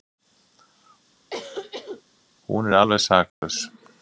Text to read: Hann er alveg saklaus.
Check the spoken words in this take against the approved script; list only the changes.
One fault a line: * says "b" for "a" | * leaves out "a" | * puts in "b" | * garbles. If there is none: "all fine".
* says "Hún" for "Hann"